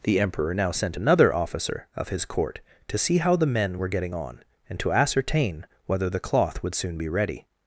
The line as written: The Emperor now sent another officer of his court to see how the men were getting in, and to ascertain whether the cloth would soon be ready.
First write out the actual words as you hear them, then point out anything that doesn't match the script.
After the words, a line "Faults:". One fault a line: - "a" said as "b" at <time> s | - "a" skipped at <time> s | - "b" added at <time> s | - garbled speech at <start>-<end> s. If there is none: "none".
The Emperor now sent another officer of his court to see how the men were getting on, and to ascertain whether the cloth would soon be ready.
Faults:
- "in" said as "on" at 4.1 s